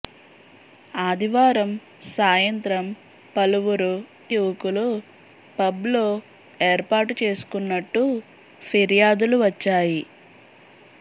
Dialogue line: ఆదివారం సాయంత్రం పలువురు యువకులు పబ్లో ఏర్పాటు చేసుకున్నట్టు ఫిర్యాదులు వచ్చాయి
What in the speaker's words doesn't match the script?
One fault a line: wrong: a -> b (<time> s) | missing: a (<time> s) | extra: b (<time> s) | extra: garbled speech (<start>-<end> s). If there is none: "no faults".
no faults